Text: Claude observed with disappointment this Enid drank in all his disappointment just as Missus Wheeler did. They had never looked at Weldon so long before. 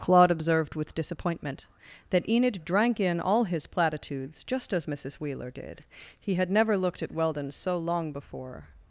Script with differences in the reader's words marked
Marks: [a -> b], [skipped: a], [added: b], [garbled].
Claude observed with disappointment [this -> that] Enid drank in all his [disappointment -> platitudes] just as Missus Wheeler did. [They -> He] had never looked at Weldon so long before.